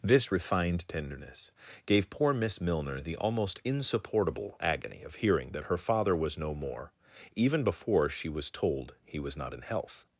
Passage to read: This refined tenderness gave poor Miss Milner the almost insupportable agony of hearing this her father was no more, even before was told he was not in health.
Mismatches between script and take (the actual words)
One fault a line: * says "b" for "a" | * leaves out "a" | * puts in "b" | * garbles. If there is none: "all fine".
* says "that" for "this"
* puts in "she"